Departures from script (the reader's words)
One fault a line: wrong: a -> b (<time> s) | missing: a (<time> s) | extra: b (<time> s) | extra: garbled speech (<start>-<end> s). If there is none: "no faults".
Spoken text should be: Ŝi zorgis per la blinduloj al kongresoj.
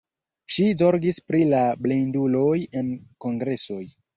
wrong: per -> pri (1.3 s)
wrong: al -> en (2.8 s)